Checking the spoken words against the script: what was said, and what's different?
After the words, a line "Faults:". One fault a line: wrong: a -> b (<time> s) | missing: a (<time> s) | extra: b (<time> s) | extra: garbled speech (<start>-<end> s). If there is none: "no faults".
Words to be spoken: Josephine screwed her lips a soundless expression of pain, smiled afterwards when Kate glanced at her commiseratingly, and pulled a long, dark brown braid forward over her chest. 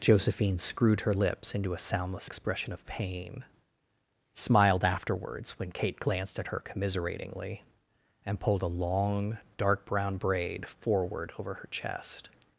Josephine screwed her lips into a soundless expression of pain, smiled afterwards when Kate glanced at her commiseratingly, and pulled a long, dark brown braid forward over her chest.
Faults:
extra: into (1.5 s)